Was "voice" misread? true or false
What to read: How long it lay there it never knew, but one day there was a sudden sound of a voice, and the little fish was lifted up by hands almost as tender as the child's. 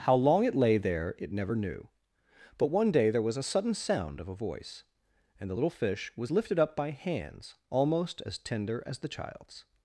false